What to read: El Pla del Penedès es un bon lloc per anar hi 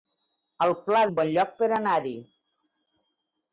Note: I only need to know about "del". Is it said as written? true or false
false